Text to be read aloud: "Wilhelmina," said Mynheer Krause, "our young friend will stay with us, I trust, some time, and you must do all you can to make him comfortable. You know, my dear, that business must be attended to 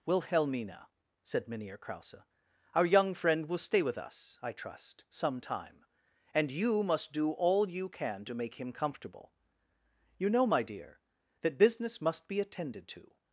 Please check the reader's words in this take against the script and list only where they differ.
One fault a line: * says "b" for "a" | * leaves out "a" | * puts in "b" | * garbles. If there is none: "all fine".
all fine